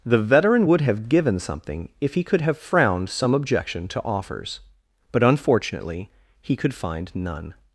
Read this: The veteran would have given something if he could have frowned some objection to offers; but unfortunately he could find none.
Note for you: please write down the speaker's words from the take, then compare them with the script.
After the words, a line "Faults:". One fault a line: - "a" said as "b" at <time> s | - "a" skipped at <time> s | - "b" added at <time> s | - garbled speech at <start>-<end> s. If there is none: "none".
The veteran would have given something if he could have frowned some objection to offers; but unfortunately he could find none.
Faults:
none